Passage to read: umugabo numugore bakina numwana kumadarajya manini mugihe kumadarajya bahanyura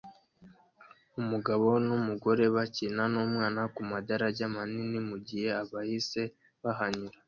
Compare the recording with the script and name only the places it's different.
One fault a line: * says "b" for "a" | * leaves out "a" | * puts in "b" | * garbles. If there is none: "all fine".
* says "abahisi" for "kumadarajya"